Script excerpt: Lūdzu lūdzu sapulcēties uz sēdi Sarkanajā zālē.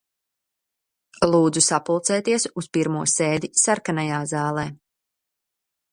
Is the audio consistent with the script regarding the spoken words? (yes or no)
no